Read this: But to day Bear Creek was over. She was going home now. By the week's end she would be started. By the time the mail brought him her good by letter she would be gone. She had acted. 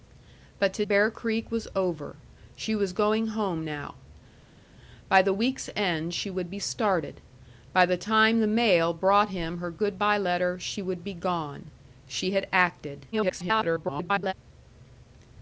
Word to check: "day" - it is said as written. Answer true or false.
false